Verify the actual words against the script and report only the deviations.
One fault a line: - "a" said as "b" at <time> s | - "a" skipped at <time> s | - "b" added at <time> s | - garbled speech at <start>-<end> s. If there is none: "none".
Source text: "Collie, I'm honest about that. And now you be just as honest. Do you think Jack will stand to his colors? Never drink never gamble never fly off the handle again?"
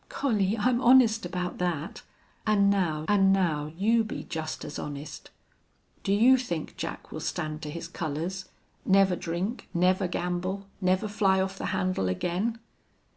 - "and now" added at 3.1 s